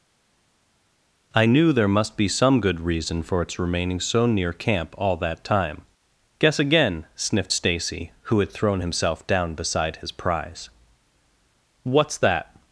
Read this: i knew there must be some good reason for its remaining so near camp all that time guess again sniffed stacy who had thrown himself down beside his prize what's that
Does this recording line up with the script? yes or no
yes